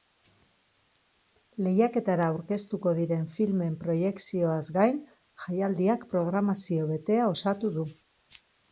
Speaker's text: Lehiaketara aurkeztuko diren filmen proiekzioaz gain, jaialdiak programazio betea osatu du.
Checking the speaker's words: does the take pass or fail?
pass